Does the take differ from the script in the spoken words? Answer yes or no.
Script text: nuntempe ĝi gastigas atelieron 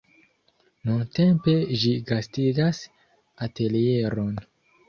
no